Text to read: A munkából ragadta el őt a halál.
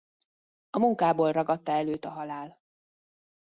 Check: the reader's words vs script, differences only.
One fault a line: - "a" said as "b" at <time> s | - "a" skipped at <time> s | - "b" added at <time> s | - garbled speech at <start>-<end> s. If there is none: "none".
none